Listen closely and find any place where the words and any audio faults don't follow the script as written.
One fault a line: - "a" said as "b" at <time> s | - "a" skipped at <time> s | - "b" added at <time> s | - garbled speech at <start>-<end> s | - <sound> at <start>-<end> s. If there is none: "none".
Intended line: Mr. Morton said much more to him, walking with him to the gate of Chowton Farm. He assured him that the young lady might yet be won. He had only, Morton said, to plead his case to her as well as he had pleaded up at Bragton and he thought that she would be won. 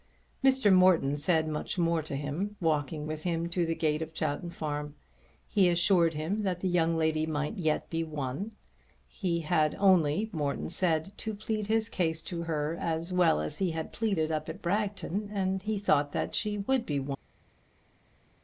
none